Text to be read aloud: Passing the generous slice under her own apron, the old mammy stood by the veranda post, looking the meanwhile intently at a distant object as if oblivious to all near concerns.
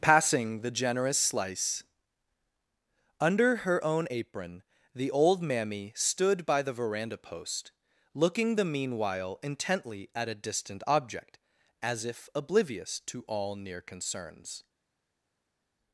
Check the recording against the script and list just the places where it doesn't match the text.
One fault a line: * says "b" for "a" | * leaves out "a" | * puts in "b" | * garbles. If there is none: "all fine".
all fine